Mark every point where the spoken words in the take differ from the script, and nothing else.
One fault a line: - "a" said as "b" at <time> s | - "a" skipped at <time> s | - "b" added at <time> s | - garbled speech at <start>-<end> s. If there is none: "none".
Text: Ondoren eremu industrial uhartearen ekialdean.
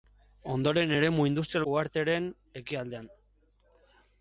none